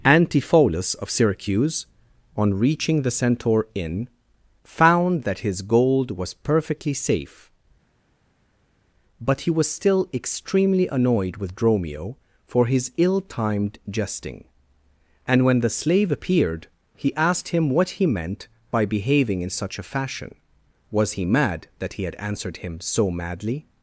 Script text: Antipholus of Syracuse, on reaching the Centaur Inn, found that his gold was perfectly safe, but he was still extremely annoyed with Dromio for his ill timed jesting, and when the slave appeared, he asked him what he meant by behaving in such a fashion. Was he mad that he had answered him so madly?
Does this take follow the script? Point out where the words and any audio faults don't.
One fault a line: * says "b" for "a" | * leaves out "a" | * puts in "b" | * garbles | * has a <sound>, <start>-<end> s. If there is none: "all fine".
all fine